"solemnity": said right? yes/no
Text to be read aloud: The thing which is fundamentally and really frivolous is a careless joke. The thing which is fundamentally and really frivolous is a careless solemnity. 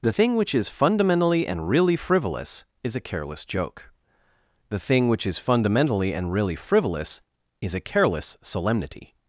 yes